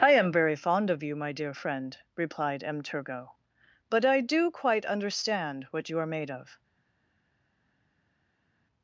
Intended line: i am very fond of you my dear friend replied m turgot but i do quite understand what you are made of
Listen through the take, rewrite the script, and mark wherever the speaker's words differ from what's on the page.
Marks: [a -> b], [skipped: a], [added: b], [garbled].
i am very fond of you my dear friend replied m turgot but i do quite understand what you are made of